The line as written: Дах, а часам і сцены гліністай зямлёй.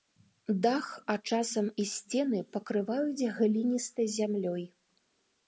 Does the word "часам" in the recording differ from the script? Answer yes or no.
no